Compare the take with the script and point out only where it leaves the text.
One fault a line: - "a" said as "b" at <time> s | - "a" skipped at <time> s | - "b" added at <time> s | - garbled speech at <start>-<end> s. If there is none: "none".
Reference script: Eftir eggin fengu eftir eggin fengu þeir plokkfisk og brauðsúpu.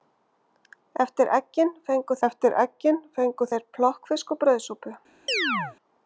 none